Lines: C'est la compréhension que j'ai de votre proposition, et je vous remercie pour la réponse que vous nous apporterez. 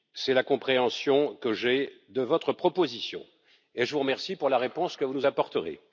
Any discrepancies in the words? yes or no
no